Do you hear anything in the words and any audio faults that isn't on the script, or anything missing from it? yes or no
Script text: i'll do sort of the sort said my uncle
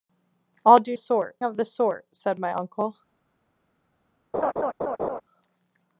yes